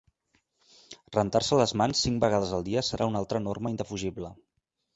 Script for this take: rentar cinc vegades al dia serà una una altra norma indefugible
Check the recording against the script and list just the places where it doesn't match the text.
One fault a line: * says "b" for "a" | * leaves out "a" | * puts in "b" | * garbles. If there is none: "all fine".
* puts in "se les mans"
* leaves out "una"